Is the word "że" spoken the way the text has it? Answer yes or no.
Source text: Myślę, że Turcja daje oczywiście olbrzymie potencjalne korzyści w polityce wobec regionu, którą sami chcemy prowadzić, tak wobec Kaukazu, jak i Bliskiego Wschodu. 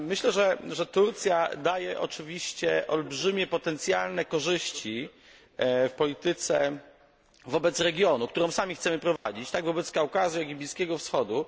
yes